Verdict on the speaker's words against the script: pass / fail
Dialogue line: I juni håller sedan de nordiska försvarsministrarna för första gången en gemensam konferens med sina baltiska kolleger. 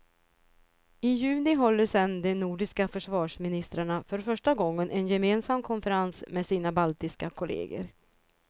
pass